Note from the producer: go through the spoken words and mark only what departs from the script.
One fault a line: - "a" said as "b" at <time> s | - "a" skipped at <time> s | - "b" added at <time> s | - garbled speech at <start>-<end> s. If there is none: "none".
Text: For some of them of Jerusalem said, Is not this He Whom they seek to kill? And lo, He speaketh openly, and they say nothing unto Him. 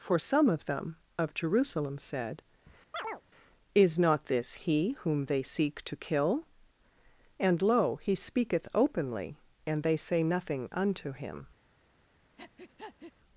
none